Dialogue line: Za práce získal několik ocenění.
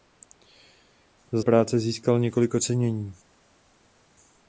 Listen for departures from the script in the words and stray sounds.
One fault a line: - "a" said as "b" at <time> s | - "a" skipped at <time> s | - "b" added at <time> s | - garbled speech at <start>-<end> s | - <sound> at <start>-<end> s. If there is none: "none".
none